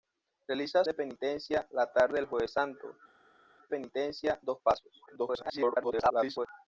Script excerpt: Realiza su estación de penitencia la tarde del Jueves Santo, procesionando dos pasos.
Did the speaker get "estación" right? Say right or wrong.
wrong